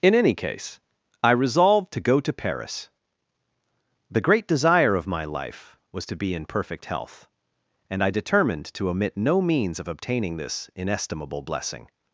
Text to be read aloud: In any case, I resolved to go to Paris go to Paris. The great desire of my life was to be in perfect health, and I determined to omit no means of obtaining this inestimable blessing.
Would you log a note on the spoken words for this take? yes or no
yes